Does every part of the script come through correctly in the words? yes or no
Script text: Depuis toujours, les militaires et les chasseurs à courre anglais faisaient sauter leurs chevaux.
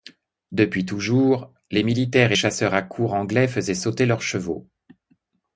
no